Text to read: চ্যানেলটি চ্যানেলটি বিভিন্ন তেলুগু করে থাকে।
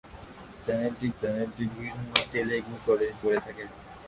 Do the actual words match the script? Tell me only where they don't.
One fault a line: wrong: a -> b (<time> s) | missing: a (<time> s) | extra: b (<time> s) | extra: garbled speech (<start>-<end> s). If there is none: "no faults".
no faults